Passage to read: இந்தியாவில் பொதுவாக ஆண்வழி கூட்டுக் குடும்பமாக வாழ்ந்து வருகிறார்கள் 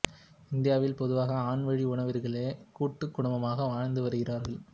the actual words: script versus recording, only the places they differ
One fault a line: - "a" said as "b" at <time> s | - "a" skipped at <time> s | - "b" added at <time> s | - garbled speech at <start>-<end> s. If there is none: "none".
- "உறவினர்களே" added at 1.9 s